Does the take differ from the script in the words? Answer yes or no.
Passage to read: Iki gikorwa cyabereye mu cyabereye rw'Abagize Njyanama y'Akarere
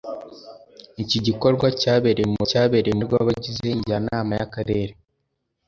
no